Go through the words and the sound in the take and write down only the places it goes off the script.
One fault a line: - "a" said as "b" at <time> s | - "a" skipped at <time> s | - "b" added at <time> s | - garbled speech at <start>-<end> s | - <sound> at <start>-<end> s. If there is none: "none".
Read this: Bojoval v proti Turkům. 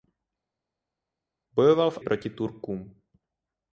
none